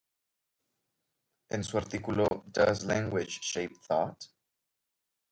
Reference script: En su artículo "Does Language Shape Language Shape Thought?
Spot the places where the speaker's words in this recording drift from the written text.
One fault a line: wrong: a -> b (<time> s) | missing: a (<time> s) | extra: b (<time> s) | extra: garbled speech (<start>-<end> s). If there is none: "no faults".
missing: Language Shape (3.7 s)